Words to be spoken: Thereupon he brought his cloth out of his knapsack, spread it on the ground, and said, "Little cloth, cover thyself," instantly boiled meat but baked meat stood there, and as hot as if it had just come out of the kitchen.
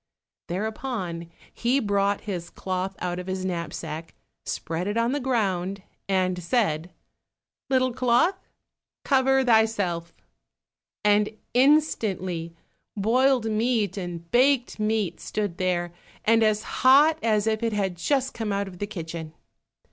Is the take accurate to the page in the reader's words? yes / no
no